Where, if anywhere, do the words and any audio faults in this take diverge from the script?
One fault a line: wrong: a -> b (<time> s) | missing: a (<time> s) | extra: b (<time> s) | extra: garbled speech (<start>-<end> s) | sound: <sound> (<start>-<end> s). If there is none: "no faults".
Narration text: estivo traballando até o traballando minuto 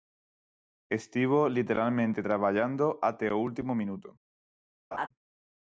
extra: literalmente (1.5 s)
wrong: traballando -> último (3.5 s)
sound: laugh (4.9-5.1 s)